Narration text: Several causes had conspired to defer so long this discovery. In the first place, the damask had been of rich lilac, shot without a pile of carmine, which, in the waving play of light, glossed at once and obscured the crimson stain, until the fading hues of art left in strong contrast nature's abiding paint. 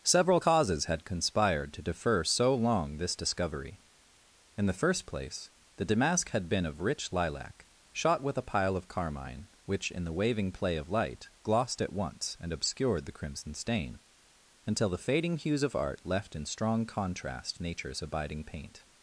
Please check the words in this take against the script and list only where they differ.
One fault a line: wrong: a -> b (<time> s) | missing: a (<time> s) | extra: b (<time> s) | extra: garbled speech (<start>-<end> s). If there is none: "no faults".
wrong: without -> with (8.2 s)